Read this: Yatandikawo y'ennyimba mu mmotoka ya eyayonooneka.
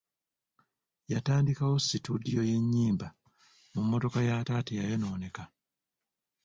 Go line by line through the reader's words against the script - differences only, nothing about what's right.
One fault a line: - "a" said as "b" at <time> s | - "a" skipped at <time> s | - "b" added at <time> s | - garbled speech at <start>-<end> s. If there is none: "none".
- "situdiyo" added at 1.9 s
- "taata" added at 4.5 s